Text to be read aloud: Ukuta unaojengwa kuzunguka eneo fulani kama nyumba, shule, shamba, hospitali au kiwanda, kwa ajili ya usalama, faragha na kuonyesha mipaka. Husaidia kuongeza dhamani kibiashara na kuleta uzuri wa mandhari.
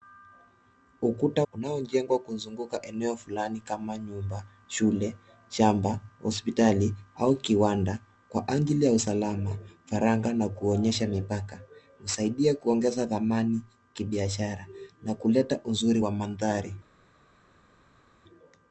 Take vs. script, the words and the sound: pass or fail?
pass